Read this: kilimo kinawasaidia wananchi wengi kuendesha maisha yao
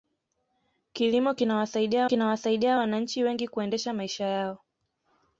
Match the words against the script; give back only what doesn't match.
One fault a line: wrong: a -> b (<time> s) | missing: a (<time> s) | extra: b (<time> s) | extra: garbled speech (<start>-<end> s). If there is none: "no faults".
extra: kinawasaidia (2.0 s)